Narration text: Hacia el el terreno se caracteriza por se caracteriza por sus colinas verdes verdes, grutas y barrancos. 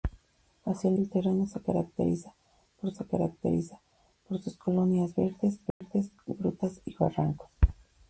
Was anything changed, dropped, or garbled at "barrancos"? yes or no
no